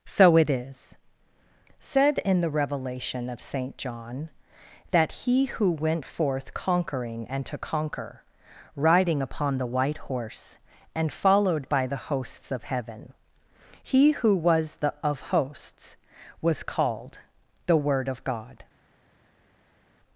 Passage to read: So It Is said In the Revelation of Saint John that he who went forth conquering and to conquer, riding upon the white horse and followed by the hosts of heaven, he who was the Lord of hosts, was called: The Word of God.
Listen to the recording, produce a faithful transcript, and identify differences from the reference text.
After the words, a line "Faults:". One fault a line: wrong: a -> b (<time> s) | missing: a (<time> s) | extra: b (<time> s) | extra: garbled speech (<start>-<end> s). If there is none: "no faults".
So It Is said In the Revelation of Saint John that he who went forth conquering and to conquer, riding upon the white horse and followed by the hosts of heaven, he who was the of hosts, was called: The Word of God.
Faults:
missing: Lord (14.9 s)